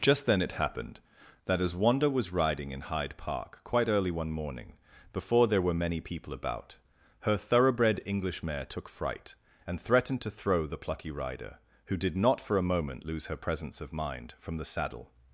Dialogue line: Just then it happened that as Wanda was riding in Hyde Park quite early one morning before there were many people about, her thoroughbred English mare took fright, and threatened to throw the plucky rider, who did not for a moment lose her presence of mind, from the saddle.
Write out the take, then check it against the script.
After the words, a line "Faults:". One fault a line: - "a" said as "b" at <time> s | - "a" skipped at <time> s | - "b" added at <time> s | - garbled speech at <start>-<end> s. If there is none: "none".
Just then it happened that as Wanda was riding in Hyde Park quite early one morning before there were many people about, her thoroughbred English mare took fright, and threatened to throw the plucky rider, who did not for a moment lose her presence of mind, from the saddle.
Faults:
none